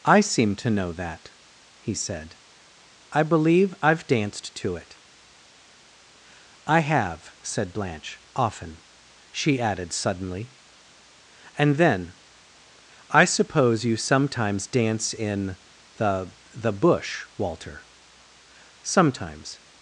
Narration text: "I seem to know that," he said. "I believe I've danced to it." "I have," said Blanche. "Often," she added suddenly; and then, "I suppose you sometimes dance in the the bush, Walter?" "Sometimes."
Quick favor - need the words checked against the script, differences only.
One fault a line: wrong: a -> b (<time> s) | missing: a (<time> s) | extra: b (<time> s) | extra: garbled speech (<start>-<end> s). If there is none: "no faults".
no faults